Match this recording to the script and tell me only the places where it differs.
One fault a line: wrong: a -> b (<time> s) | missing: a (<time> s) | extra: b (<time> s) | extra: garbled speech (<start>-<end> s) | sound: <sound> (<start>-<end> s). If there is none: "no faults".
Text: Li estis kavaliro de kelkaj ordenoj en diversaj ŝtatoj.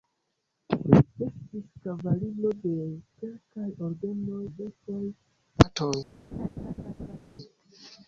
missing: en (4.4 s)
sound: laugh (6.3-7.2 s)